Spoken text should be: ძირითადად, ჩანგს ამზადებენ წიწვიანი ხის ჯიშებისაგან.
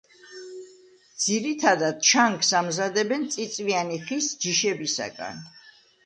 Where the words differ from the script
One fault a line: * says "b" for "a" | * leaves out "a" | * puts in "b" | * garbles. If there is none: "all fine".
all fine